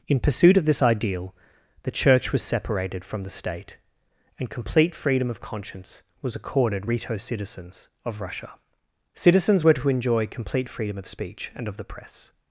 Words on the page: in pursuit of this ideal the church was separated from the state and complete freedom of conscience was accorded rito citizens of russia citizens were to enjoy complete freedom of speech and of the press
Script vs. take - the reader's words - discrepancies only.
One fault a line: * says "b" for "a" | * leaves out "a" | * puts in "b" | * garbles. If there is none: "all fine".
all fine